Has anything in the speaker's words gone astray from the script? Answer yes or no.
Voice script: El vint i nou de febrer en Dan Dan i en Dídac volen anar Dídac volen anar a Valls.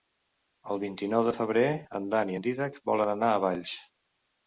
yes